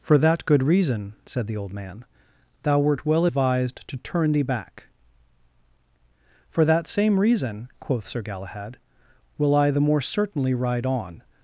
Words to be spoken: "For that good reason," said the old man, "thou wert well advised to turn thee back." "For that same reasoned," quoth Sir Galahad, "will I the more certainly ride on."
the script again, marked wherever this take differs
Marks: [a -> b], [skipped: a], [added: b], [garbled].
"For that good reason," said the old man, "thou wert well advised to turn thee back." "For that same [reasoned," -> reason] quoth Sir Galahad, "will I the more certainly ride on."